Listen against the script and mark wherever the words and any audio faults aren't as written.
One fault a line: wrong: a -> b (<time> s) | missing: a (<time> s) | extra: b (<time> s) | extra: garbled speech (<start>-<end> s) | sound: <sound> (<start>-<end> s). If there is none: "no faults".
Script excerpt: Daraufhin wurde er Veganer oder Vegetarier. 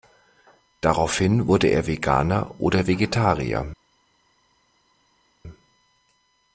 no faults